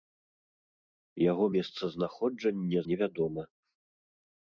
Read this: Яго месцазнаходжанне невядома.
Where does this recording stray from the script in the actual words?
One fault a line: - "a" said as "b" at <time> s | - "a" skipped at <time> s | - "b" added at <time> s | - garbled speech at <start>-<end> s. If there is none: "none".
none